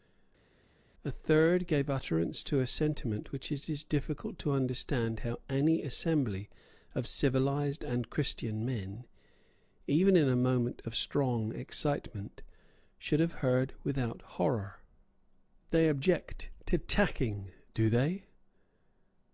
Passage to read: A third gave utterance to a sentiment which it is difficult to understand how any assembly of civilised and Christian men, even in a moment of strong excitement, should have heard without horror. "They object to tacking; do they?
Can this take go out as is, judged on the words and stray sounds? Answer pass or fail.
pass